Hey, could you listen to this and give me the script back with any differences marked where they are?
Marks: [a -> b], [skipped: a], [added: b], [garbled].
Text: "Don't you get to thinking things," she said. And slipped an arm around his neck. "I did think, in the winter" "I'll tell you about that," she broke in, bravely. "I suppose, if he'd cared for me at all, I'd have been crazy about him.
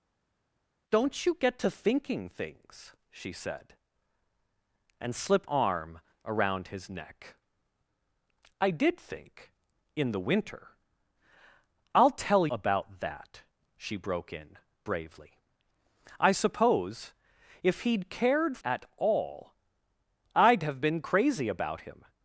"Don't you get to thinking things," she said. And slipped [skipped: an] arm around his neck. "I did think, in the winter" "I'll tell [skipped: you] about that," she broke in, bravely. "I suppose, if he'd cared [skipped: for me] at all, I'd have been crazy about him.